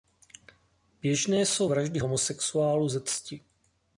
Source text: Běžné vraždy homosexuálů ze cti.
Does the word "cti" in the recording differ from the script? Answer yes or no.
no